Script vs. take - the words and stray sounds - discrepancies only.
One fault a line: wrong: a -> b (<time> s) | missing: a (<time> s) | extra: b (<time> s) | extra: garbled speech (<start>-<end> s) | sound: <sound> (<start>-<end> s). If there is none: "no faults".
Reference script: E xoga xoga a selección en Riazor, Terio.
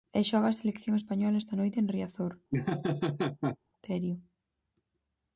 missing: xoga (0.5 s)
extra: española esta noite (1.0 s)
sound: laugh (2.5-3.6 s)